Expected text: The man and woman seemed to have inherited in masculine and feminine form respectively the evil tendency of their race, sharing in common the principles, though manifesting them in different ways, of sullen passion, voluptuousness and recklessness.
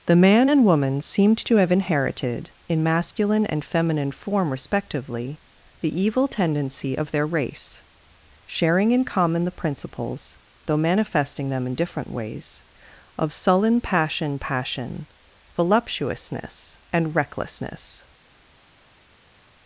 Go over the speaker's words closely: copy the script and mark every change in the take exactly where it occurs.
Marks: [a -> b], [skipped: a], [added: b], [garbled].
The man and woman seemed to have inherited in masculine and feminine form respectively the evil tendency of their race, sharing in common the principles, though manifesting them in different ways, of sullen passion, [added: passion] voluptuousness and recklessness.